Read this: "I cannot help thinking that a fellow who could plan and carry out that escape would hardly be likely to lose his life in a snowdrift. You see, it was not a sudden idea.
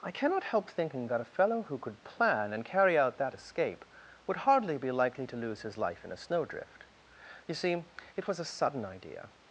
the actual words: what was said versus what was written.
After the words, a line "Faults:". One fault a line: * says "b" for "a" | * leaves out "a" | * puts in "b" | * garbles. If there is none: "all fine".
"I cannot help thinking that a fellow who could plan and carry out that escape would hardly be likely to lose his life in a snowdrift. You see, it was a sudden idea.
Faults:
* leaves out "not"